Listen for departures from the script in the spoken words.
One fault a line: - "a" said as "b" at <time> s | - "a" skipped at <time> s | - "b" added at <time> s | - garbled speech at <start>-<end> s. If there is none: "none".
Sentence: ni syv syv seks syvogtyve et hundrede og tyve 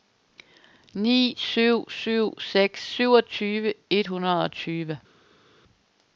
none